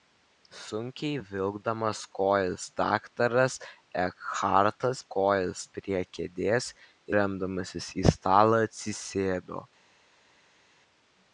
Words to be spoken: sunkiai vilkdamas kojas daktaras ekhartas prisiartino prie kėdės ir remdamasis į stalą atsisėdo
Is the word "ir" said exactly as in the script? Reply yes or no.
no